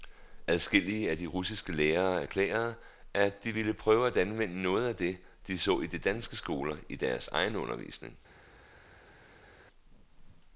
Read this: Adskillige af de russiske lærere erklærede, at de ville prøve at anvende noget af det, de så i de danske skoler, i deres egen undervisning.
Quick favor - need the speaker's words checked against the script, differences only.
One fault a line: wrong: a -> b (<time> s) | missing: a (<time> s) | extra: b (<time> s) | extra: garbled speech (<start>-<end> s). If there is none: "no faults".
no faults